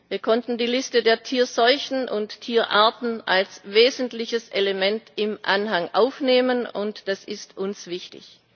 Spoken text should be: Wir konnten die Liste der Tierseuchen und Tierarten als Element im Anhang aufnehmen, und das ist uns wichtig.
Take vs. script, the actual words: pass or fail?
fail